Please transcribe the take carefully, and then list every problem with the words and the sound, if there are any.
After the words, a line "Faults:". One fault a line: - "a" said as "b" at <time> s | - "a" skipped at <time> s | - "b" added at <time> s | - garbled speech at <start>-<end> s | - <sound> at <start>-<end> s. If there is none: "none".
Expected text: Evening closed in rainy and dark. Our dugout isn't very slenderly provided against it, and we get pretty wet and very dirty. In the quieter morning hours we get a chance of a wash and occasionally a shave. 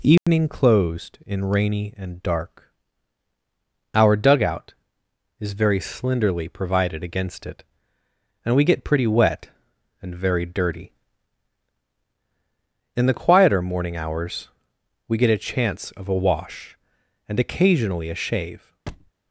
Evening closed in rainy and dark. Our dugout is very slenderly provided against it, and we get pretty wet and very dirty. In the quieter morning hours we get a chance of a wash and occasionally a shave.
Faults:
- dropout at 0.2-0.3 s
- "isn't" said as "is" at 5.4 s
- thud at 18.9-19.1 s